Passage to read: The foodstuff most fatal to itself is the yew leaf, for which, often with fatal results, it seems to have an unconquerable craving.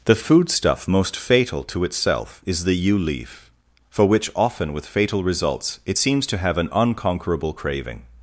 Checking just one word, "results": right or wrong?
right